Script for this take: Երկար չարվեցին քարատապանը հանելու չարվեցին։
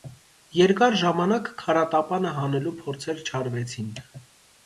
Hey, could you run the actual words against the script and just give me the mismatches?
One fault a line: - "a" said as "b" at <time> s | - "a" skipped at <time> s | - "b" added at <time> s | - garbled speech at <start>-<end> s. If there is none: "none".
- "չարվեցին" said as "ժամանակ" at 1.0 s
- "փորձեր" added at 2.8 s